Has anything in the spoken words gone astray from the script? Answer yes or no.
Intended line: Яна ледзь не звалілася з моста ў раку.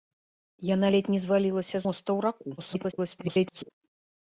yes